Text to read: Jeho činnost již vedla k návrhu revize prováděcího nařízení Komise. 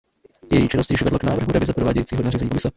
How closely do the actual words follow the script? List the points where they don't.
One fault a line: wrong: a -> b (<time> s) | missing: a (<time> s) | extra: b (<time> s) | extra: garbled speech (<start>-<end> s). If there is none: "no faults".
wrong: Jeho -> Její (0.5 s)